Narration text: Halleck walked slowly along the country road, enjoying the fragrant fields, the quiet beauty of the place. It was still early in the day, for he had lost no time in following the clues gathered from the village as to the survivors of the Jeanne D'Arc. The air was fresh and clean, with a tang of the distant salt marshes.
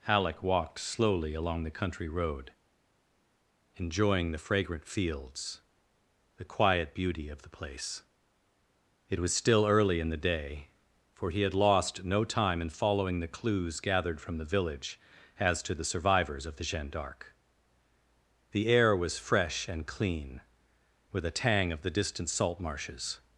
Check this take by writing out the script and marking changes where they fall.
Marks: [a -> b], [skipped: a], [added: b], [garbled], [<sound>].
Halleck walked slowly along the country road, enjoying the fragrant fields, the quiet beauty of the place. It was still early in the day, for he had lost no time in following the clues gathered from the village as to the survivors of the Jeanne D'Arc. The air was fresh and clean, with a tang of the distant salt marshes.